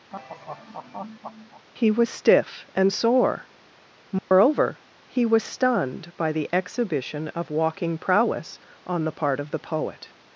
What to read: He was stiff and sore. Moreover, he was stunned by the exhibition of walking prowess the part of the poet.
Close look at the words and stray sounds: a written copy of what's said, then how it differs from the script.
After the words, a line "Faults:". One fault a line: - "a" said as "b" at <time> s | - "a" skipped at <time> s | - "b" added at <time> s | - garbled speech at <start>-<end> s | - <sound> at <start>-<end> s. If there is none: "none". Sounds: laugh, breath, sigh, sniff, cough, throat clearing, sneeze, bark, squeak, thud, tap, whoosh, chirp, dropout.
He was stiff and sore. Moreover, he was stunned by the exhibition of walking prowess on the part of the poet.
Faults:
- laugh at 0.1-1.7 s
- dropout at 4.2-4.3 s
- "on" added at 8.9 s